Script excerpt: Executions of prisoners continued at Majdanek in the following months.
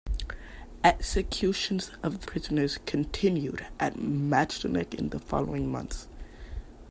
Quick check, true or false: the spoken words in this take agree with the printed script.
true